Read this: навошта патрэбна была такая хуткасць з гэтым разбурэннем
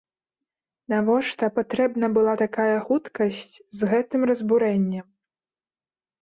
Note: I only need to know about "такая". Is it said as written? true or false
true